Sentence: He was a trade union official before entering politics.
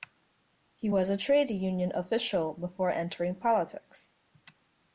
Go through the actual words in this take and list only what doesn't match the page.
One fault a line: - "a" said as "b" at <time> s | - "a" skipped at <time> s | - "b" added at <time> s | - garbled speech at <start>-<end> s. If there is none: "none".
none